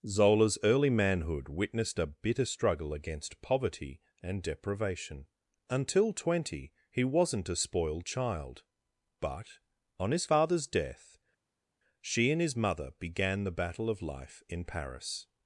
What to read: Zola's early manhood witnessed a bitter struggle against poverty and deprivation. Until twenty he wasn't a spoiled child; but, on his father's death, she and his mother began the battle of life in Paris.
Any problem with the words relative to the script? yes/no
no